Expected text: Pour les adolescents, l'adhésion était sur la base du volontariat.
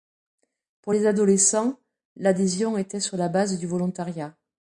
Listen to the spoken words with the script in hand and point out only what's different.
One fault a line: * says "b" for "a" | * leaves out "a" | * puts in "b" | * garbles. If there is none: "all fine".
all fine